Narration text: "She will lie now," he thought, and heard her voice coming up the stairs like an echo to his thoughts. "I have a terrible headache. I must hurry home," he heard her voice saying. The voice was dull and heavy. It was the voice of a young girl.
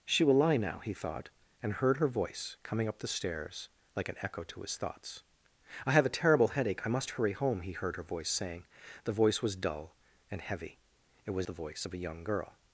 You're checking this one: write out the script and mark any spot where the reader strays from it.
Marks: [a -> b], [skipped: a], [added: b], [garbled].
"She will lie now," he thought, and heard her voice coming up the stairs like an echo to his thoughts. "I have a terrible headache. I must hurry home," he heard her voice saying. The voice was dull and heavy. It was the voice of a young girl.